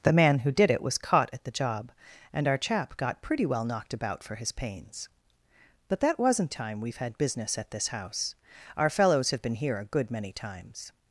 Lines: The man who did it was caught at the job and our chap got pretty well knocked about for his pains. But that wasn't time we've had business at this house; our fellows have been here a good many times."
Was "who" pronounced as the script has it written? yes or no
yes